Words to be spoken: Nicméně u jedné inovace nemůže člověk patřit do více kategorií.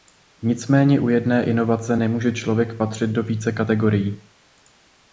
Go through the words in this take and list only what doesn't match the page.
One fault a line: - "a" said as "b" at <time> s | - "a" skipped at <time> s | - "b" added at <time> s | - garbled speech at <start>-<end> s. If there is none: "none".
none